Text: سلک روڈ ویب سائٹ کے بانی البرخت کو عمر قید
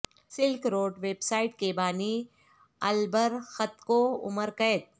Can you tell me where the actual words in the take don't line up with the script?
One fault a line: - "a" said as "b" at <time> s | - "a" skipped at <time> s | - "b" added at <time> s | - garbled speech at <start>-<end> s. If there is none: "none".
none